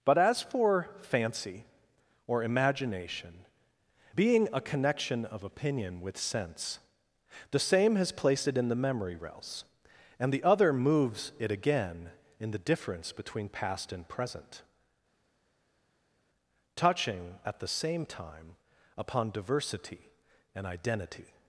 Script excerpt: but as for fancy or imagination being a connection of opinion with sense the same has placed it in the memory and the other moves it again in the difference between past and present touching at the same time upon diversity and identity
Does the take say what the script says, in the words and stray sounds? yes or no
no